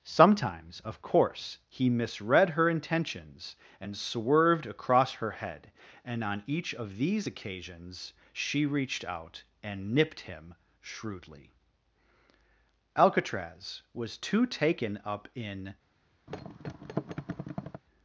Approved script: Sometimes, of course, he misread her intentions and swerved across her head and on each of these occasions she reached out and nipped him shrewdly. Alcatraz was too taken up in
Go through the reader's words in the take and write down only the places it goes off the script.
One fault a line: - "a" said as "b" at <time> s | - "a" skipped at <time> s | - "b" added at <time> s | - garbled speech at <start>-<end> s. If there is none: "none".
none